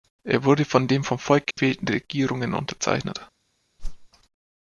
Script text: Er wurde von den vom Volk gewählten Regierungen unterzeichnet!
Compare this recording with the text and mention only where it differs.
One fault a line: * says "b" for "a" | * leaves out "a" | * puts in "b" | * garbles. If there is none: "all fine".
all fine